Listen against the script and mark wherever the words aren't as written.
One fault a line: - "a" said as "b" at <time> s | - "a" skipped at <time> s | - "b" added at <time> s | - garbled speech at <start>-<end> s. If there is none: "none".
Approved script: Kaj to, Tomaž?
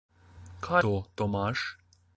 none